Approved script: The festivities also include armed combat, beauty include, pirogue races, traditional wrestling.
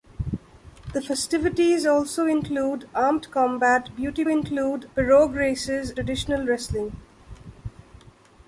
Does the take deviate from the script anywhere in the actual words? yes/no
no